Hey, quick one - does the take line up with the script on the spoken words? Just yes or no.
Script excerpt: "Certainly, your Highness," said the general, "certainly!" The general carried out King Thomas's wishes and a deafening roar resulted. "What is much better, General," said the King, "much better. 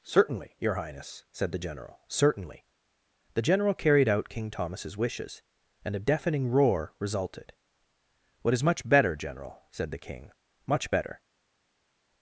yes